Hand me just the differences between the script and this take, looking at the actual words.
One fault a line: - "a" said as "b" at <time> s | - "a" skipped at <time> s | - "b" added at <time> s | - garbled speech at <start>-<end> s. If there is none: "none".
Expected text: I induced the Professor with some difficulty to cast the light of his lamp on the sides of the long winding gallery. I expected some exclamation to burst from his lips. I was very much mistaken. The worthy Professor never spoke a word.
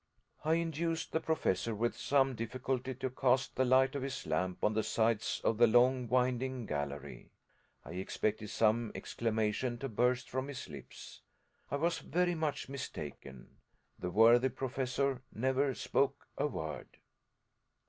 none